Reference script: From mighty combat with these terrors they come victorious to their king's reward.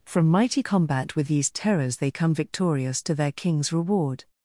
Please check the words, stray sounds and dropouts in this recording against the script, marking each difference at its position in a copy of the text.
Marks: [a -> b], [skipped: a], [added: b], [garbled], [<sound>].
From mighty combat with these terrors they come victorious to their king's reward.